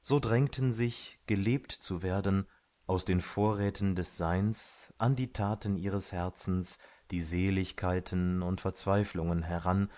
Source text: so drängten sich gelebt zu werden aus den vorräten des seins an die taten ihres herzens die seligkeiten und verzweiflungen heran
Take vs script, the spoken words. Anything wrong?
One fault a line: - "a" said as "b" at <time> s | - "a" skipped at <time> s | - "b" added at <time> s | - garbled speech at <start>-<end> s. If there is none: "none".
none